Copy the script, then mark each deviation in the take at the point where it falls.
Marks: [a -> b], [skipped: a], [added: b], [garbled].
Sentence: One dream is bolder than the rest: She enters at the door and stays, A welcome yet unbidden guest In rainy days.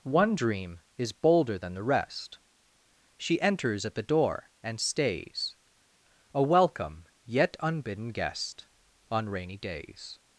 One dream is bolder than the rest: She enters at the door and stays, A welcome yet unbidden guest [In -> On] rainy days.